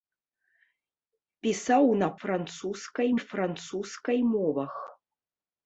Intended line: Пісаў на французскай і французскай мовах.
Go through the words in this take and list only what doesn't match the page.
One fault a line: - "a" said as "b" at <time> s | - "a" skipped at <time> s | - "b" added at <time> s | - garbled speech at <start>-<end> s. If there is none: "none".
none